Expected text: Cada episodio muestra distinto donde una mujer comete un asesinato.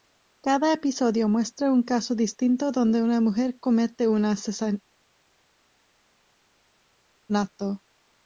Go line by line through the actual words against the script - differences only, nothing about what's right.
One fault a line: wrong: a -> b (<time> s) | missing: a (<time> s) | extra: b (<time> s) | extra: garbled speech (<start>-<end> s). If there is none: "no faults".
extra: un caso (1.7 s)